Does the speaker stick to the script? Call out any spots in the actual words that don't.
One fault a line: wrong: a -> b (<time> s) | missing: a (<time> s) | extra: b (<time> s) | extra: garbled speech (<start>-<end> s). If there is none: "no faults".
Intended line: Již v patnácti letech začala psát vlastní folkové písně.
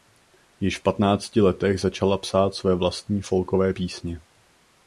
extra: své (2.5 s)